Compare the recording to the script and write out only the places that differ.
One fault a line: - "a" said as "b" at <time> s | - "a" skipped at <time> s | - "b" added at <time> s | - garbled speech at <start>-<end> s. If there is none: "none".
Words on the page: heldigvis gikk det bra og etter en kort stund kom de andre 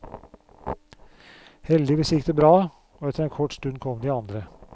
none